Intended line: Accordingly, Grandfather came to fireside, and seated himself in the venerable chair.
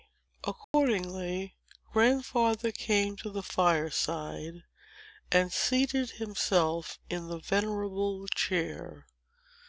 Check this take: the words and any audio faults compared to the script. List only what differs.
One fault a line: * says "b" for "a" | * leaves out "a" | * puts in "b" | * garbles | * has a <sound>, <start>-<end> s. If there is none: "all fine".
* has a dropout, 0.6-0.7 s
* puts in "the"